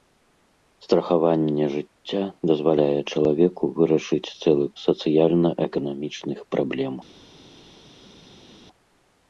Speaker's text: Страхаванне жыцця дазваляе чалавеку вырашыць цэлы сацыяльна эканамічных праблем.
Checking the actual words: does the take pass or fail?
pass